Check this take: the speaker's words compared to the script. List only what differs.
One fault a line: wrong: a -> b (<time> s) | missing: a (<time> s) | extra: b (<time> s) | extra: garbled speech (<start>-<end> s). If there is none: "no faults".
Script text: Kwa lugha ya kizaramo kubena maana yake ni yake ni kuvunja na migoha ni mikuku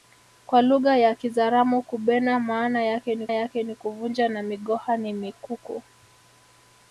no faults